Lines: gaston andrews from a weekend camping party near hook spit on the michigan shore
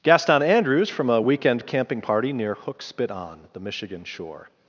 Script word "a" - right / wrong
right